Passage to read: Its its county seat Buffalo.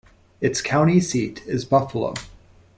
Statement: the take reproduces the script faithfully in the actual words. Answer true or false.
false